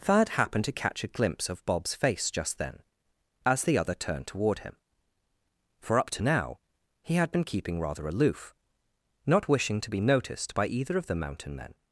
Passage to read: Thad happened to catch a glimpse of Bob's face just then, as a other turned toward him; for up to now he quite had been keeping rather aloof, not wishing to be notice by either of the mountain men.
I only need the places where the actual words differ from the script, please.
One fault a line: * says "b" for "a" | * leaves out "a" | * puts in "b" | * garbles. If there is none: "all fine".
* says "the" for "a"
* leaves out "quite"
* says "noticed" for "notice"